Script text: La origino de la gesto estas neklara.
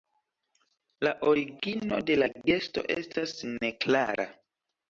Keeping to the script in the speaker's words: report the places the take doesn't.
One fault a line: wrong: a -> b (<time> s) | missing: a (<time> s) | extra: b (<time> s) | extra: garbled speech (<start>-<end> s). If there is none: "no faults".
no faults